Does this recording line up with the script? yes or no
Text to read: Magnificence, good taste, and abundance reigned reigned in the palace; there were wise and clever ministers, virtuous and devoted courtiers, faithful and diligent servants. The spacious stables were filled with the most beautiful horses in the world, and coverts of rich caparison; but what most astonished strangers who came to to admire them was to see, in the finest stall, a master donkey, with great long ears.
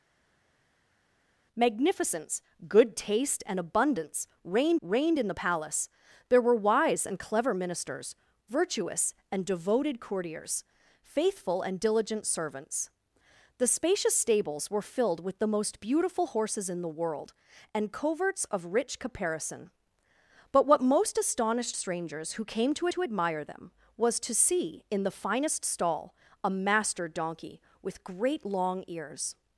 yes